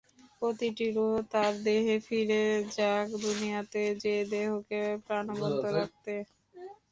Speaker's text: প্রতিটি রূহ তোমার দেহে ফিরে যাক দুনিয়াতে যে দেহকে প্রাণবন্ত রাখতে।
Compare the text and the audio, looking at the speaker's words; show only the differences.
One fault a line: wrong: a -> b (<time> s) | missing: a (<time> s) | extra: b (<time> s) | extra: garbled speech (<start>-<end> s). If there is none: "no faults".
wrong: তোমার -> তার (1.3 s)